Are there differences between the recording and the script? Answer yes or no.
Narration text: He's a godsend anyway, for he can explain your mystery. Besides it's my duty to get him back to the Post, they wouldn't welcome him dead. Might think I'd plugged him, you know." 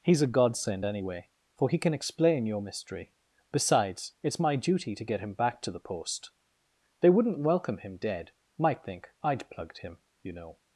no